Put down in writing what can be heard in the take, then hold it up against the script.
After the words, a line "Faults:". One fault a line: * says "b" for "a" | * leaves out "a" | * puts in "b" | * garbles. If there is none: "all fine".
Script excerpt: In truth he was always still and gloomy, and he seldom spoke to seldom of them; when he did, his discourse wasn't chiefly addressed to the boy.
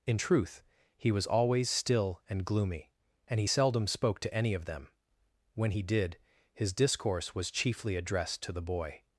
In truth he was always still and gloomy, and he seldom spoke to any of them; when he did, his discourse was chiefly addressed to the boy.
Faults:
* says "any" for "seldom"
* says "was" for "wasn't"